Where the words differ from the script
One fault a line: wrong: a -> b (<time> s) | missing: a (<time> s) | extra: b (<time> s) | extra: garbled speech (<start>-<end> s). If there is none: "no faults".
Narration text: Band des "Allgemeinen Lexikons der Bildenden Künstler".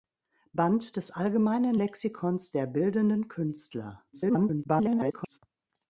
extra: garbled speech (4.1-5.4 s)